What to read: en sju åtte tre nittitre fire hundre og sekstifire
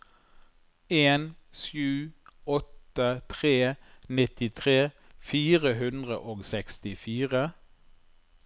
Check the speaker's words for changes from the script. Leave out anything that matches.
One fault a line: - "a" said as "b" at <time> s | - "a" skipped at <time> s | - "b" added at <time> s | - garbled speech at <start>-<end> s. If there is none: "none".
none